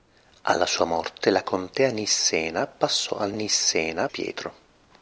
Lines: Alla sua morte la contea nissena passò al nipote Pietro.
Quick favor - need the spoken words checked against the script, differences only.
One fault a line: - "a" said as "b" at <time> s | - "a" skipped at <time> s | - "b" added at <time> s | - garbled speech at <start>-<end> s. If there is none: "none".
- "nipote" said as "nissena" at 3.3 s